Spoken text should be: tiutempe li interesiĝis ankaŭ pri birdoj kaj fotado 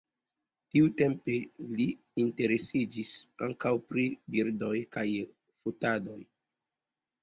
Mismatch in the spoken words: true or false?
false